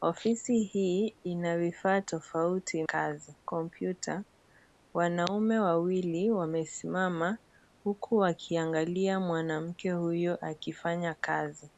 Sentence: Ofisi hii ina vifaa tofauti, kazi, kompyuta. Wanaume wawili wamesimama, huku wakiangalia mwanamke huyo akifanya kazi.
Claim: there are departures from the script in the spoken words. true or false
false